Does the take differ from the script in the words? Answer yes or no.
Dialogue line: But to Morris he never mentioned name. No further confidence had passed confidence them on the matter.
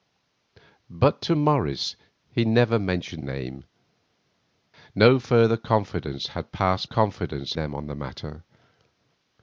no